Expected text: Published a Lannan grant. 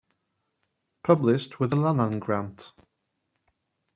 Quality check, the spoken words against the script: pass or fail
fail